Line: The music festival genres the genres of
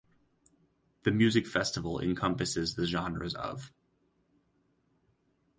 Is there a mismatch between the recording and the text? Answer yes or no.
yes